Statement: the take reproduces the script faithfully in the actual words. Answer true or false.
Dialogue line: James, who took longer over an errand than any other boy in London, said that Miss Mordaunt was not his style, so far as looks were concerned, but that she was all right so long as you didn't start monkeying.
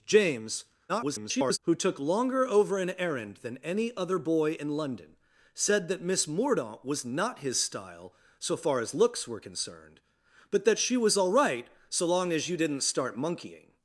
false